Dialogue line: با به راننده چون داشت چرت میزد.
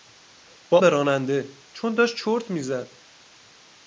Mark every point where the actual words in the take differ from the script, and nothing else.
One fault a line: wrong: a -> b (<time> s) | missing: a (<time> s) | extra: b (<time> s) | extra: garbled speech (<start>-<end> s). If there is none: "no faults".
no faults